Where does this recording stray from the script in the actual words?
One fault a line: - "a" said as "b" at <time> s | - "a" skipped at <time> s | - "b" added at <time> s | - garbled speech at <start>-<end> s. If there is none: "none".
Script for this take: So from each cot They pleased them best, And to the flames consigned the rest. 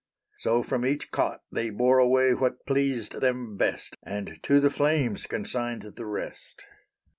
- "bore away what" added at 1.7 s